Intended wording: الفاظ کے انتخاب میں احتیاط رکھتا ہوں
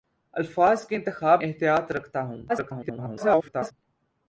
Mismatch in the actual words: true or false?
true